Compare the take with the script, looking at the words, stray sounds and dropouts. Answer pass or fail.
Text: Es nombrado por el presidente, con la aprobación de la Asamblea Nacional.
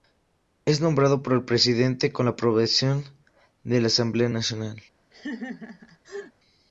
fail